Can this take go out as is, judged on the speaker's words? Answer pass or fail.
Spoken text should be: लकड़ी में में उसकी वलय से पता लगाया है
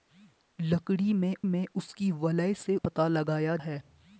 pass